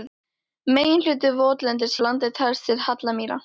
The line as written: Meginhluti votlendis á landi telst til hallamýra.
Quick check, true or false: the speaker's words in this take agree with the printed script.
true